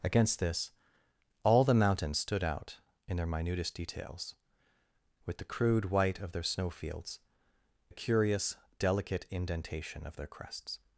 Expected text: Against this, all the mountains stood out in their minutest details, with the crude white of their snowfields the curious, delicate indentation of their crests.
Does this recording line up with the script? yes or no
yes